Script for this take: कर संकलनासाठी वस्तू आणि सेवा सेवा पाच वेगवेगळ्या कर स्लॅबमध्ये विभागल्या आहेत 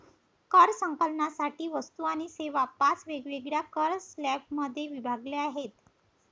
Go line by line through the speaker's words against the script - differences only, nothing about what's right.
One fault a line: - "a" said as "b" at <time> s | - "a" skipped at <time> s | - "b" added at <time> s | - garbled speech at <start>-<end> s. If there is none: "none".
- "सेवा" skipped at 2.6 s